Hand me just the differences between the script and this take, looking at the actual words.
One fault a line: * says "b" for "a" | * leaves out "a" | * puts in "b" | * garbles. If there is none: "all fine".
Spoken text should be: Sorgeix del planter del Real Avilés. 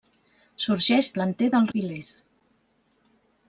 * leaves out "del"
* leaves out "Real"